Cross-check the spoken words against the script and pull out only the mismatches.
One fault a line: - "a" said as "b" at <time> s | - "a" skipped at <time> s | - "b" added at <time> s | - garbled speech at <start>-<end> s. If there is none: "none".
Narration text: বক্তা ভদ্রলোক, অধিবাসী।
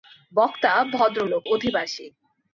none